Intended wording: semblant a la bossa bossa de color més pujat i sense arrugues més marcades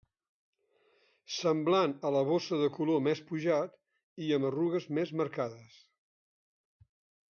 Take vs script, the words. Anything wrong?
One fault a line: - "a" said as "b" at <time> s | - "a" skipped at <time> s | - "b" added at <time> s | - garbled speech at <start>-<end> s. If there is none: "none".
- "bossa" skipped at 2.6 s
- "sense" said as "amb" at 4.4 s